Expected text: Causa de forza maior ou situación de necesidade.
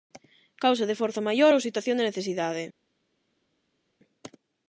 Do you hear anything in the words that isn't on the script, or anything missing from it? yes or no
no